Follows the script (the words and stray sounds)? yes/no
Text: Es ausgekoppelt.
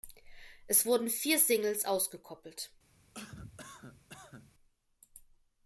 no